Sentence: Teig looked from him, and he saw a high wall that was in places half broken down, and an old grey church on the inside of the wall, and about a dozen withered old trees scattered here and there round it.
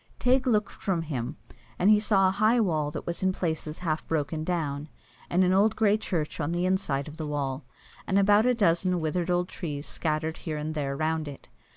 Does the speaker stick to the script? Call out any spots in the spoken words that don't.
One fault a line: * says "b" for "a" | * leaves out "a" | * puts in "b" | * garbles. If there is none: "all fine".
all fine